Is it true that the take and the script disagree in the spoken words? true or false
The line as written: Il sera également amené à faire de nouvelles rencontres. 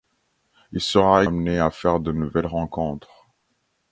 true